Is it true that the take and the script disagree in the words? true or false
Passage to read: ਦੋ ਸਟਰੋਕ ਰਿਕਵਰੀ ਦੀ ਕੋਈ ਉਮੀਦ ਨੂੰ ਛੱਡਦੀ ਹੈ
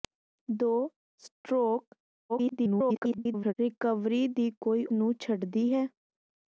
true